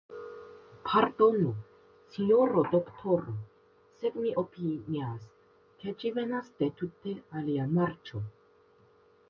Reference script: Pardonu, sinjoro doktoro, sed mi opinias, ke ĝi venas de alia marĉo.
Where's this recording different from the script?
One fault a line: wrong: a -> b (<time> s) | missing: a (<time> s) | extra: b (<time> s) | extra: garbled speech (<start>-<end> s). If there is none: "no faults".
extra: tute (6.8 s)